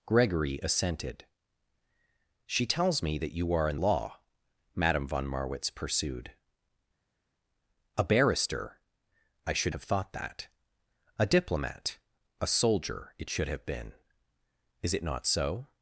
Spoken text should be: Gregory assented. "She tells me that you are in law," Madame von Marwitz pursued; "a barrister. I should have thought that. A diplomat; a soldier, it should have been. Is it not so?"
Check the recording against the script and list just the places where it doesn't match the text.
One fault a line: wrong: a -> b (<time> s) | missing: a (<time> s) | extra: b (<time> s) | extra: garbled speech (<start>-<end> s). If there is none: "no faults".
no faults